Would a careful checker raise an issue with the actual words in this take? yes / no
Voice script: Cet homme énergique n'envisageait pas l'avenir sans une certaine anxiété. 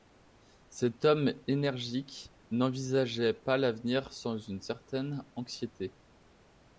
no